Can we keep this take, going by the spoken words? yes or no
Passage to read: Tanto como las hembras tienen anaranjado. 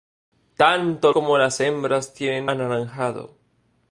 yes